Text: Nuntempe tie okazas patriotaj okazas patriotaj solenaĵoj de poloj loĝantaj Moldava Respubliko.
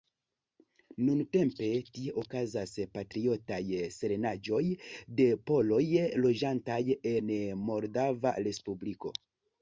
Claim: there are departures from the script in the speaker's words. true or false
true